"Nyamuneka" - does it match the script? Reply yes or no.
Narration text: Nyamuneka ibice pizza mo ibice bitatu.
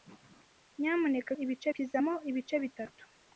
yes